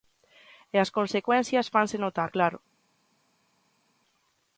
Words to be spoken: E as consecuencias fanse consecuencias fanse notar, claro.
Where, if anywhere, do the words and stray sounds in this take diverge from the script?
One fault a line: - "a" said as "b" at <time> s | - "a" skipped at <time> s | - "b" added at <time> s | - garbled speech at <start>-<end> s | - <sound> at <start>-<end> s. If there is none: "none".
- "consecuencias fanse" skipped at 2.0 s